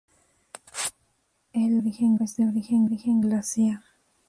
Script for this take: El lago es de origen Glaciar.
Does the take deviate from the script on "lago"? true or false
true